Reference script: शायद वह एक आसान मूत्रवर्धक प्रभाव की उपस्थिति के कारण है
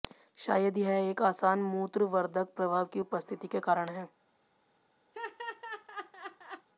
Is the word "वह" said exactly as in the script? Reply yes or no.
no